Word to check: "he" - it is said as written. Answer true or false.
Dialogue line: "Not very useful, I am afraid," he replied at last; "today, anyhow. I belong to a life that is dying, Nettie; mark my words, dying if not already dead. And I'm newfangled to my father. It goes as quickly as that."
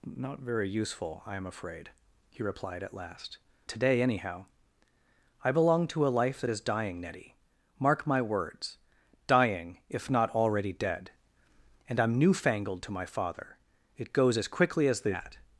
true